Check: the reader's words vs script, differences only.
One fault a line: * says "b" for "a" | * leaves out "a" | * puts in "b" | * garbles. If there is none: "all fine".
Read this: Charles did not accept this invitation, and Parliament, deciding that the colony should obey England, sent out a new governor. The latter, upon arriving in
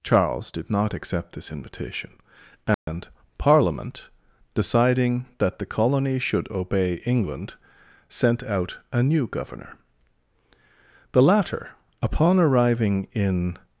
all fine